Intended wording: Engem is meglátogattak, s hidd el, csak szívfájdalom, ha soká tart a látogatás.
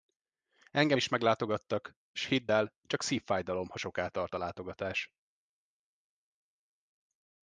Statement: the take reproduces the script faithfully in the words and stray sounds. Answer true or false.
true